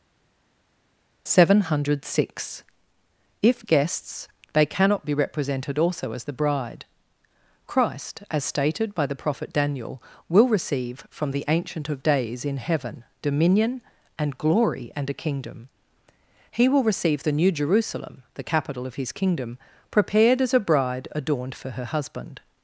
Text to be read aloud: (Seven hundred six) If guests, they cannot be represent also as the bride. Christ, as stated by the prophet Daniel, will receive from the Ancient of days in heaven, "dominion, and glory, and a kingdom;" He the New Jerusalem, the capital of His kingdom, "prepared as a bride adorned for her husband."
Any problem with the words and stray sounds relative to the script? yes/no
yes